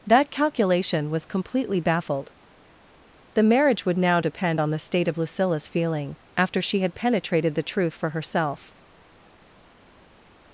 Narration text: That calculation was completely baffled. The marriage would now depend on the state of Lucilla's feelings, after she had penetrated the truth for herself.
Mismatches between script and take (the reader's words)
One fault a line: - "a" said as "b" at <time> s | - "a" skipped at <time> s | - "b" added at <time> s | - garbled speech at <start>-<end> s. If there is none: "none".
- "feelings" said as "feeling" at 5.7 s